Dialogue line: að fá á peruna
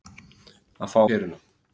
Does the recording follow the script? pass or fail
pass